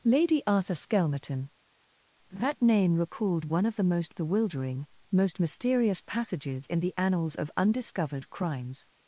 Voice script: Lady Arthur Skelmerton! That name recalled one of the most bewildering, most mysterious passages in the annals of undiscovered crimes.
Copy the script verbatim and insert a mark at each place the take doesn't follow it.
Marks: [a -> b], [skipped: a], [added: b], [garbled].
Lady Arthur Skelmerton! That name recalled one of the most bewildering, most mysterious passages in the annals of undiscovered crimes.